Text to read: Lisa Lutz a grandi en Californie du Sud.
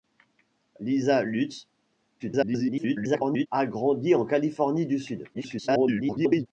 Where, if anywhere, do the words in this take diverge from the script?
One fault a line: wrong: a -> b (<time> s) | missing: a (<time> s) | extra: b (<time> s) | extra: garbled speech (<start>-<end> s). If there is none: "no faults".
extra: garbled speech (2.2-3.5 s)
extra: garbled speech (5.3-6.5 s)